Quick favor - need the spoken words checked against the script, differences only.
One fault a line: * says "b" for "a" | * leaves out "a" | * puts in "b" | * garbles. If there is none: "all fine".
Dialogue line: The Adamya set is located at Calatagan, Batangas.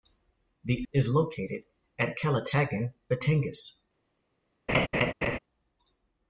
* leaves out "Adamya set"